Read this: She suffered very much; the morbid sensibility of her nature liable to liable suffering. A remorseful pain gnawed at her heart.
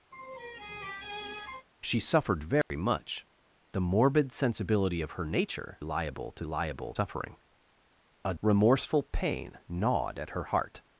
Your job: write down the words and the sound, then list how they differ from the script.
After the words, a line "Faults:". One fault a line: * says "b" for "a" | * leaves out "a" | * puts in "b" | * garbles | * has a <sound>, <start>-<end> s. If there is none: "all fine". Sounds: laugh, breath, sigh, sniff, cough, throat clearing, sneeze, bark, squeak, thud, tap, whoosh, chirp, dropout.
She suffered very much; the morbid sensibility of her nature liable to liable suffering. A remorseful pain gnawed at her heart.
Faults:
* has a laugh, 0.1-1.7 s
* has a dropout, 2.6-2.7 s